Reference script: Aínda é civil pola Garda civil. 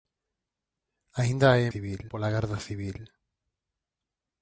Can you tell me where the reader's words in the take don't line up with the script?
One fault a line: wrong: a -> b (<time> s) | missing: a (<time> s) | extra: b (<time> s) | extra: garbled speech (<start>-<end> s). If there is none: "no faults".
no faults